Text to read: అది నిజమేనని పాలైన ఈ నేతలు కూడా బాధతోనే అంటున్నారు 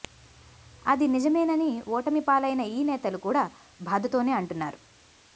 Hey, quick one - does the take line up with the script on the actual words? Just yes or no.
no